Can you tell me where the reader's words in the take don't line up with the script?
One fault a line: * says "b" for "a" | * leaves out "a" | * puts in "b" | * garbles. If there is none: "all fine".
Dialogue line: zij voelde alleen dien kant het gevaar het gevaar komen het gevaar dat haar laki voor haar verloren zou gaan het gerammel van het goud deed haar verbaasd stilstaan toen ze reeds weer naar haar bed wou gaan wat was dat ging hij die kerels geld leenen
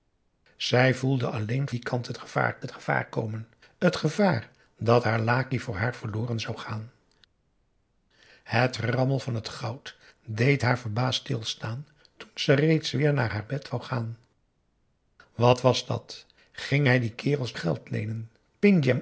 all fine